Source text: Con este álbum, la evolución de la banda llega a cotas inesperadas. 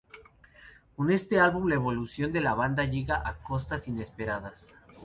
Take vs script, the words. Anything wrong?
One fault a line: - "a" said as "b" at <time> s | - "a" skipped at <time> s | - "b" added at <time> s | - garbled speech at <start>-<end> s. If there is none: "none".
none